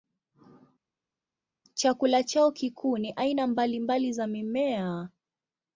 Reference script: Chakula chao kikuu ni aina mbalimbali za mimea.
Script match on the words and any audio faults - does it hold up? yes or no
yes